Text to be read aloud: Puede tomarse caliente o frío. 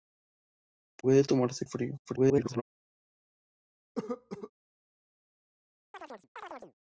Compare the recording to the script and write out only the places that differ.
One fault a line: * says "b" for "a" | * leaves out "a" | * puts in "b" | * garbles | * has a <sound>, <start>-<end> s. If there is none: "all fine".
* leaves out "caliente"
* garbles
* has a cough, 4.0-4.5 s
* has a chirp, 5.9-6.7 s